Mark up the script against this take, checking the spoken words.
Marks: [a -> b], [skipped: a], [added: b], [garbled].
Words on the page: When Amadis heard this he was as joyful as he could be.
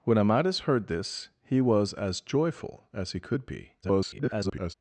When Amadis heard this he was as joyful as he could be. [garbled]